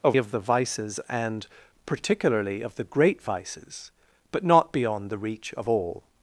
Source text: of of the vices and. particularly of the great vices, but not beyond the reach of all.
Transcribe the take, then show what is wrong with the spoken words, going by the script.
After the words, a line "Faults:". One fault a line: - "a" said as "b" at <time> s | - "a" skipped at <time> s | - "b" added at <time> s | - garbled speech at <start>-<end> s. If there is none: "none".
of of the vices and. particularly of the great vices, but not beyond the reach of all.
Faults:
none